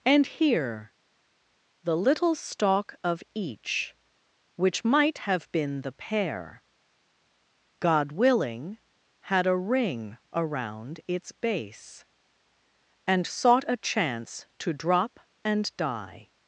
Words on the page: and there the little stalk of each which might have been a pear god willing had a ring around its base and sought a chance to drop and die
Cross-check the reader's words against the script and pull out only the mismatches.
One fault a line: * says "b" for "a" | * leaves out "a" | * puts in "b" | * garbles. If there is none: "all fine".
* says "here" for "there"
* says "the" for "a"